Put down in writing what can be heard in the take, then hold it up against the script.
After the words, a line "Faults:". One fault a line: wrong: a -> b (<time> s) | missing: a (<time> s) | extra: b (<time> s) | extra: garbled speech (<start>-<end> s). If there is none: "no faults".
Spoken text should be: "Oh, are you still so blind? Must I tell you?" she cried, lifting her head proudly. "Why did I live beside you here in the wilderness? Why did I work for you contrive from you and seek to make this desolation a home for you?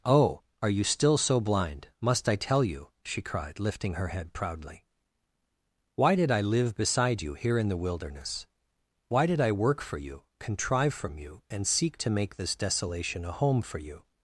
"Oh, are you still so blind? Must I tell you?" she cried, lifting her head proudly. "Why did I live beside you here in the wilderness? Why did I work for you contrive from you and seek to make this desolation a home for you?
Faults:
no faults